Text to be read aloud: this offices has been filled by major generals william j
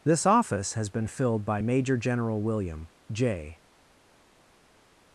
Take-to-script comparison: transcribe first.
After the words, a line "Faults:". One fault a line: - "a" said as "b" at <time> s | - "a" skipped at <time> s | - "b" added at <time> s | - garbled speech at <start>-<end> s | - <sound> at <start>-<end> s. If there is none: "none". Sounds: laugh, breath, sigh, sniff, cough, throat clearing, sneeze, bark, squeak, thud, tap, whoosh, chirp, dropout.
this office has been filled by major general william j
Faults:
- "offices" said as "office" at 0.2 s
- "generals" said as "general" at 2.0 s